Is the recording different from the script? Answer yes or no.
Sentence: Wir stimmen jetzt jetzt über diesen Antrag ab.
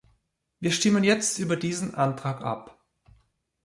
yes